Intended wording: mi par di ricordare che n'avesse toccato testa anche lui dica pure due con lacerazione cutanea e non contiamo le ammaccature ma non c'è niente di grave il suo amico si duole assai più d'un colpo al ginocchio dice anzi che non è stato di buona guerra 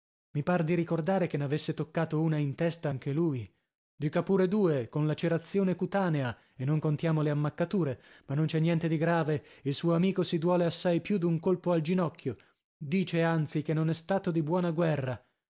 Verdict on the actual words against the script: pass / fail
fail